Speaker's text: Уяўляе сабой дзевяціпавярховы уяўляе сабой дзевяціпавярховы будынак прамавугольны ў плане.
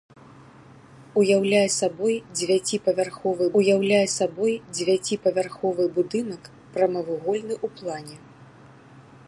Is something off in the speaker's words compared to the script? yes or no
no